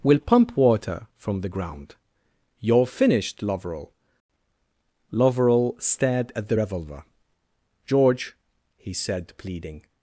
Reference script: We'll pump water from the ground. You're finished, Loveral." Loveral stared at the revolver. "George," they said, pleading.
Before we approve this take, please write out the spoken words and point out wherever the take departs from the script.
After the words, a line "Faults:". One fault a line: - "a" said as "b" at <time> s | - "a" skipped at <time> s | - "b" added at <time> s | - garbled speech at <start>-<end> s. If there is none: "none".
We'll pump water from the ground. You're finished, Loveral." Loveral stared at the revolver. "George," he said, pleading.
Faults:
- "they" said as "he" at 8.8 s